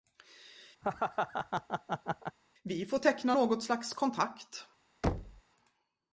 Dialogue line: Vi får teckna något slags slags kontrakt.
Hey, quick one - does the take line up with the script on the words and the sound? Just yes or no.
no